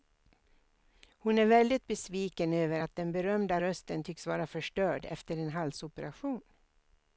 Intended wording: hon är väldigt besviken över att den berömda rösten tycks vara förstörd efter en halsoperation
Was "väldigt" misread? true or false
false